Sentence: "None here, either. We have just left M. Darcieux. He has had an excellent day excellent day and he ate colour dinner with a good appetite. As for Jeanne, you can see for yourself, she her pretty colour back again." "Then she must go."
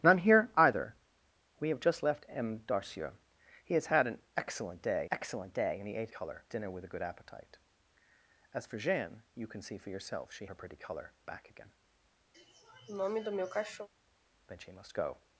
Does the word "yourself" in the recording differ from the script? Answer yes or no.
no